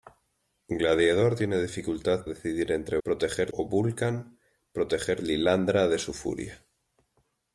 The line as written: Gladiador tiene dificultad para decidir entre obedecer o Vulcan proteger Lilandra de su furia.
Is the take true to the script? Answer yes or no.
no